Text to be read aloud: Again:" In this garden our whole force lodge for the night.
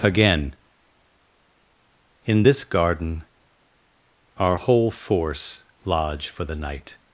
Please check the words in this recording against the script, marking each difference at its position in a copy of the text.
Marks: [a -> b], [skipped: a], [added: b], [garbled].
Again:" In this garden our whole force lodge for the night.